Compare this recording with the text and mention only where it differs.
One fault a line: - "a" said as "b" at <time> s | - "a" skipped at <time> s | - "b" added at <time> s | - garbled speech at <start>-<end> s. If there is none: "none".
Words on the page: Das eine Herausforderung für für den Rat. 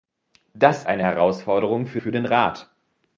none